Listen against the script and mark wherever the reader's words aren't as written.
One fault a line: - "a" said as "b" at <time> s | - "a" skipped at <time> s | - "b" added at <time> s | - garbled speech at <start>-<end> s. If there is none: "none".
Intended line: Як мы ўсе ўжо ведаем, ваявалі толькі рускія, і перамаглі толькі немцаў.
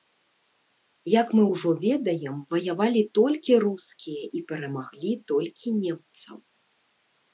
- "ўсе" skipped at 1.4 s